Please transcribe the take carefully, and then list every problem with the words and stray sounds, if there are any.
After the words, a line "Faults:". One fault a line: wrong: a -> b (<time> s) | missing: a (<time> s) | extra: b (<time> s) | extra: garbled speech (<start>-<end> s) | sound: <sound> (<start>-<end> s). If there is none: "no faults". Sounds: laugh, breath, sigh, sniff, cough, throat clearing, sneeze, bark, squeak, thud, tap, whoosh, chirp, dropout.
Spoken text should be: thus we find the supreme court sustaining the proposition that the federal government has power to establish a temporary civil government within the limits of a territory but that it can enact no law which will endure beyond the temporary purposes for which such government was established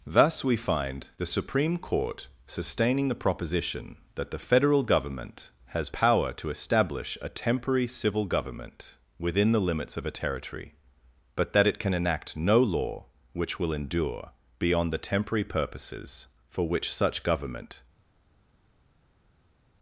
thus we find the supreme court sustaining the proposition that the federal government has power to establish a temporary civil government within the limits of a territory but that it can enact no law which will endure beyond the temporary purposes for which such government
Faults:
missing: was established (17.8 s)